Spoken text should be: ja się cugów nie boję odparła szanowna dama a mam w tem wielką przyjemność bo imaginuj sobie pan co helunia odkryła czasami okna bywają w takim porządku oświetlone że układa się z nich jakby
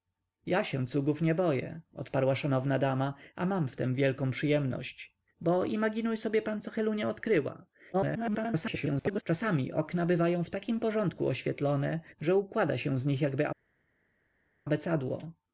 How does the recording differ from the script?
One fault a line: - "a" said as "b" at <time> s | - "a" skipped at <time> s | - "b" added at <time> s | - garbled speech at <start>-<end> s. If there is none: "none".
- garbled speech at 7.9-9.2 s